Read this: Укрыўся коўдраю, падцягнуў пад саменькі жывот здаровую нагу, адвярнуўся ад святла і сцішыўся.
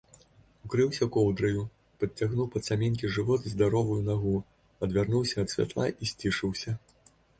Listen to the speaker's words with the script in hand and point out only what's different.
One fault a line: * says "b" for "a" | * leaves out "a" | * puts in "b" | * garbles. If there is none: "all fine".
all fine